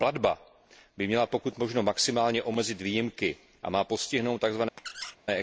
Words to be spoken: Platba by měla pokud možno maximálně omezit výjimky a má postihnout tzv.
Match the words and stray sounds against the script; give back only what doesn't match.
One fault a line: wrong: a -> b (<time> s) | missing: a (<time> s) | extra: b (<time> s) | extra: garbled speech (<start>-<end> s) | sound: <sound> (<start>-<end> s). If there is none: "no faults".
sound: squeak (4.8-5.2 s)